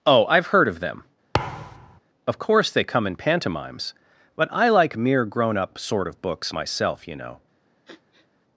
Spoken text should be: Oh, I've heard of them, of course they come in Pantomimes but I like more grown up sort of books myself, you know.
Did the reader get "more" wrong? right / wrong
wrong